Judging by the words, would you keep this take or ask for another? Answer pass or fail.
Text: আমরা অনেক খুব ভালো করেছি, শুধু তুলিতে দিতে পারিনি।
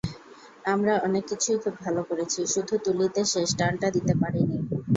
fail